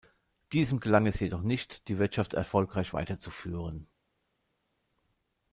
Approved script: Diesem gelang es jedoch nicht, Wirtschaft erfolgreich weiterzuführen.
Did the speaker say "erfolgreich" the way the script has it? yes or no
yes